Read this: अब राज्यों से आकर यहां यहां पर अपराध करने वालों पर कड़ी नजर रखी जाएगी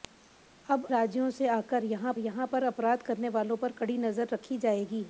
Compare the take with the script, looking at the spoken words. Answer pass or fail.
pass